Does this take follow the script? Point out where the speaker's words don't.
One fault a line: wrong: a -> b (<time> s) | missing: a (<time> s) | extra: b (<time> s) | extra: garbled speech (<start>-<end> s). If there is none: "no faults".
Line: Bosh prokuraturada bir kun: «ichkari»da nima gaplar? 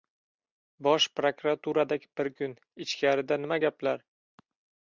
no faults